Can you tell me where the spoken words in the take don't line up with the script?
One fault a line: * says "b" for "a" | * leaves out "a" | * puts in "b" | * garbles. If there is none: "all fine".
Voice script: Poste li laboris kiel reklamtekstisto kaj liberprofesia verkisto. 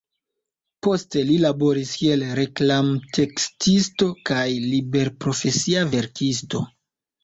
all fine